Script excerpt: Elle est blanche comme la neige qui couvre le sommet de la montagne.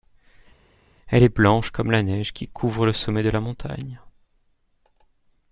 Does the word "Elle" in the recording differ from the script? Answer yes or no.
no